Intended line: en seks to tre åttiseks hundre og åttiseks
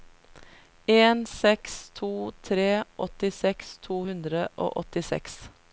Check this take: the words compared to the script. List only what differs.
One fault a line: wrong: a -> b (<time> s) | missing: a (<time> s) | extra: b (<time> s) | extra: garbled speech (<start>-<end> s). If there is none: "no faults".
extra: to (3.9 s)